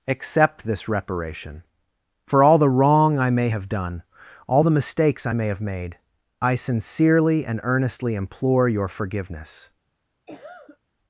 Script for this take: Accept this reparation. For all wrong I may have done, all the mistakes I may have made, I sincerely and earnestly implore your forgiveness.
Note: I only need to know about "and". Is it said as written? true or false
true